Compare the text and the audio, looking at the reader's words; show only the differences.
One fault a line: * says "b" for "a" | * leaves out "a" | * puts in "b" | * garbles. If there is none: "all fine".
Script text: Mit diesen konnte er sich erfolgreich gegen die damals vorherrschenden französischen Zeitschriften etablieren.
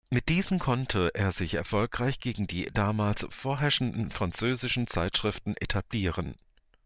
all fine